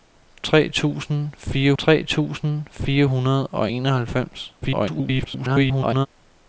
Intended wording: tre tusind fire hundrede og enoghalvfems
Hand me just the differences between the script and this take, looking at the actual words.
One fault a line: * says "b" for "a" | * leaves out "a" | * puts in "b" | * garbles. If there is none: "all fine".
* puts in "tre tusind fire"
* garbles